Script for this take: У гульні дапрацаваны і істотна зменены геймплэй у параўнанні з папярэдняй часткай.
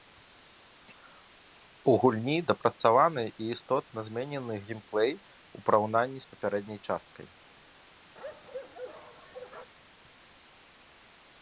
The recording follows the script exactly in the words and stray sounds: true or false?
false